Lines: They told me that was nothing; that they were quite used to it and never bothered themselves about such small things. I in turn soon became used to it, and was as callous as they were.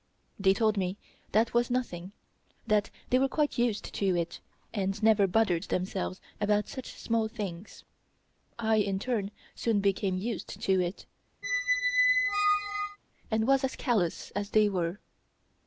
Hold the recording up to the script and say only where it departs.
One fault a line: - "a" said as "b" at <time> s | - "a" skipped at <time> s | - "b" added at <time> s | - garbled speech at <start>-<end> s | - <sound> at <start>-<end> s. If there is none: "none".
- squeak at 11.4-13.0 s